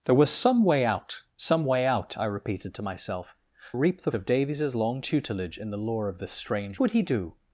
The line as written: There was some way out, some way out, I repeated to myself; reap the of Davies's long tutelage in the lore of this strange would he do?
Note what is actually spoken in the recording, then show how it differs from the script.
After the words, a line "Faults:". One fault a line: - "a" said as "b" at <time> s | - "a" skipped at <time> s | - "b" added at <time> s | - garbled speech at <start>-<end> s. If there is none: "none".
There was some way out, some way out, I repeated to myself; reap the of Davies's long tutelage in the lore of this strange would he do?
Faults:
none